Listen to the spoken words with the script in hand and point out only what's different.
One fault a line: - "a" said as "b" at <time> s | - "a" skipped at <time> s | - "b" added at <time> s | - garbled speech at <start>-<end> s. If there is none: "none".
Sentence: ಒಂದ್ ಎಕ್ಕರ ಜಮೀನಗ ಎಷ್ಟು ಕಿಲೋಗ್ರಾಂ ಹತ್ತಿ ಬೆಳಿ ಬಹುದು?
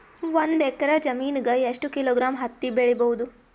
none